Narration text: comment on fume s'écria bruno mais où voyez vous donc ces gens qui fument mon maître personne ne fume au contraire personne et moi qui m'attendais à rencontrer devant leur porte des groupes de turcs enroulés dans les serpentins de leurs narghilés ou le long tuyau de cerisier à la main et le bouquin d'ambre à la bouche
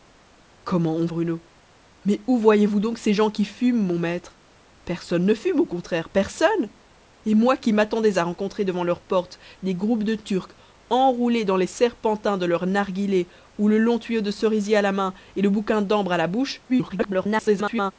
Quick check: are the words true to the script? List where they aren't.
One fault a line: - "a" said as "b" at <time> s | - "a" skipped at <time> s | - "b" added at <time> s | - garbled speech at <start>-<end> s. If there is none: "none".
- "fume s'écria" skipped at 1.1 s
- garbled speech at 16.7-17.9 s